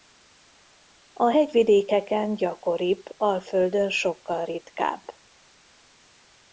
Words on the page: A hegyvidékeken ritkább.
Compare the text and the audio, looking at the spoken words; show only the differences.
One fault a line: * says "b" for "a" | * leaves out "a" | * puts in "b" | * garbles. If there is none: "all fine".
* puts in "gyakoribb Alföldön sokkal"